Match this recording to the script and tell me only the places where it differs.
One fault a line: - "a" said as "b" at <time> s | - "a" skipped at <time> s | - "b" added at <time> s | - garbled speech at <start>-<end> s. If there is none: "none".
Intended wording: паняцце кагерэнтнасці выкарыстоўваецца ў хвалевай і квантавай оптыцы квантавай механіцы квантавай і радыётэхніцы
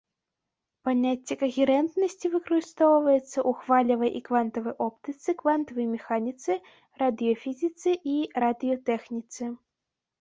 - "квантавай" said as "радыёфізіцы" at 7.0 s